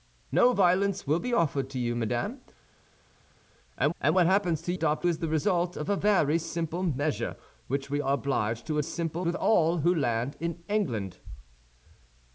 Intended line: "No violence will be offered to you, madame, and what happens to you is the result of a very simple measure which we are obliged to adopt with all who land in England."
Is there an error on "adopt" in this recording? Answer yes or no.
yes